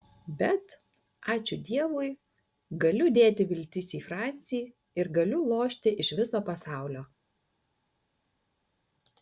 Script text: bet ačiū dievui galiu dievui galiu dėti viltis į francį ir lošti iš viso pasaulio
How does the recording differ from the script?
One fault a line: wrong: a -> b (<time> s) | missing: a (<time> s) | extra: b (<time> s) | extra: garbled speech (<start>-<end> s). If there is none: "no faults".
missing: dievui galiu (3.1 s)
extra: galiu (5.2 s)